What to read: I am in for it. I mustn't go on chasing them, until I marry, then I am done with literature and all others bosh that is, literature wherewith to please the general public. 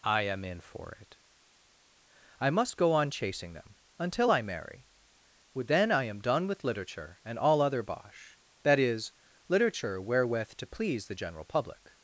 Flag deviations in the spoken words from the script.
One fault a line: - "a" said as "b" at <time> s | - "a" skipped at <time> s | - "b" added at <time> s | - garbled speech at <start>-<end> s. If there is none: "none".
- "mustn't" said as "must" at 2.5 s
- "others" said as "other" at 7.6 s